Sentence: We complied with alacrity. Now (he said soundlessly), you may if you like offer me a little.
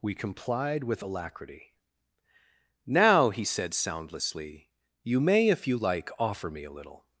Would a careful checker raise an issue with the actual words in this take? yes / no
no